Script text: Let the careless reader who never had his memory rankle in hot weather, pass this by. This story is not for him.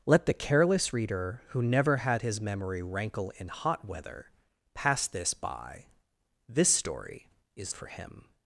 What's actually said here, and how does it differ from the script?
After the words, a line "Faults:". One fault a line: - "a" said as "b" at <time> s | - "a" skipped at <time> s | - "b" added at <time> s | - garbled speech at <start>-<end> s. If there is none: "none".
Let the careless reader who never had his memory rankle in hot weather, pass this by. This story is for him.
Faults:
- "not" skipped at 7.7 s